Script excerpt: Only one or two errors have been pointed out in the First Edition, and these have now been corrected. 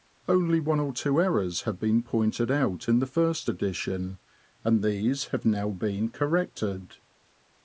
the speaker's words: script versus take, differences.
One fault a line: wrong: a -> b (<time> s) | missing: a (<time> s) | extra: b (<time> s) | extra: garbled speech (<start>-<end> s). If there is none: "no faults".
no faults